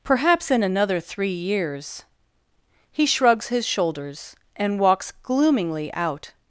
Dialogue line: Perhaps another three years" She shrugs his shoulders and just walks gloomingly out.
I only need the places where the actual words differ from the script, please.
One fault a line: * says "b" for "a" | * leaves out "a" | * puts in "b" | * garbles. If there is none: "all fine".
* puts in "in"
* says "He" for "She"
* leaves out "just"